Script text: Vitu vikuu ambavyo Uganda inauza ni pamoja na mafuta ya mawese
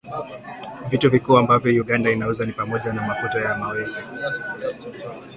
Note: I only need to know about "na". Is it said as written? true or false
true